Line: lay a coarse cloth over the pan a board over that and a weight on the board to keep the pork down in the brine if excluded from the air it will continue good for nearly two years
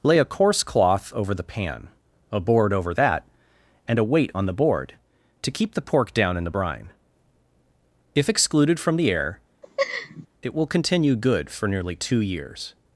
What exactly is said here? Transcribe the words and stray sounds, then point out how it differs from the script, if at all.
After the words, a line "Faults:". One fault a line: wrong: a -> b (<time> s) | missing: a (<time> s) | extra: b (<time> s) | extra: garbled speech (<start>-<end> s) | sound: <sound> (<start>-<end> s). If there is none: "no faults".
lay a coarse cloth over the pan a board over that and a weight on the board to keep the pork down in the brine if excluded from the air it will continue good for nearly two years
Faults:
sound: laugh (9.6-10.3 s)